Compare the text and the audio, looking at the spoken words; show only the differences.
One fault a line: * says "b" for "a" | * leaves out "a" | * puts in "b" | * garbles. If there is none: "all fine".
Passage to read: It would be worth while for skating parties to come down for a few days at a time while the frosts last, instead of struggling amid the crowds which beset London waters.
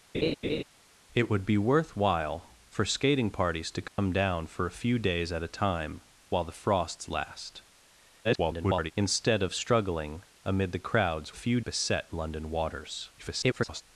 * garbles
* says "few" for "which"
* garbles